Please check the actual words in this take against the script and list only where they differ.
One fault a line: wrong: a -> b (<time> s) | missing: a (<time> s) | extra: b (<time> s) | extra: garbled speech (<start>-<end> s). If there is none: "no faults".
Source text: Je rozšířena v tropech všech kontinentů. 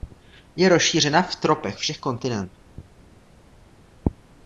no faults